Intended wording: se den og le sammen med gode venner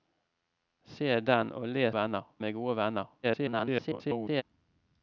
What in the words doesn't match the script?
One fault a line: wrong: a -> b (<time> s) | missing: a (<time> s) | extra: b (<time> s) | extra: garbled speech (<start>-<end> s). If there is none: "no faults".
wrong: sammen -> venner (1.9 s)
extra: garbled speech (3.2-4.4 s)